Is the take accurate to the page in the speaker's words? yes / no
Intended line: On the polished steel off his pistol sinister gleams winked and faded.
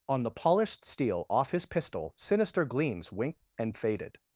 yes